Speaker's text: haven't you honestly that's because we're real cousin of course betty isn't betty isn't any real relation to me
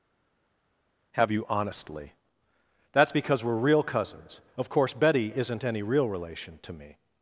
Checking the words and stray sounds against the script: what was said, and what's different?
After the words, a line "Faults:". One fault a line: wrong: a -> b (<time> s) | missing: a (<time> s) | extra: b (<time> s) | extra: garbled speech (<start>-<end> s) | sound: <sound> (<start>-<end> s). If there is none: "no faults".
have you honestly that's because we're real cousins of course betty isn't any real relation to me
Faults:
wrong: haven't -> have (1.2 s)
wrong: cousin -> cousins (3.8 s)
missing: betty isn't (5.6 s)